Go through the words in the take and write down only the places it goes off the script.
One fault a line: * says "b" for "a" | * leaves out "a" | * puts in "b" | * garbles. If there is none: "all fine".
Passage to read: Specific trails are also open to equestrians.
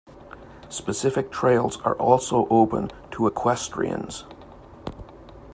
all fine